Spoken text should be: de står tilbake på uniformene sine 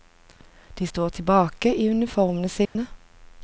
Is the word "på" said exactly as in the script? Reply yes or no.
no